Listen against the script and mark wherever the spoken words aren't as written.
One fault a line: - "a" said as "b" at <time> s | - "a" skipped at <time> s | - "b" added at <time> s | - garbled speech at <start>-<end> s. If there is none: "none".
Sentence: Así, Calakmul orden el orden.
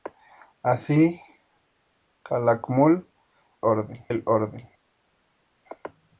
none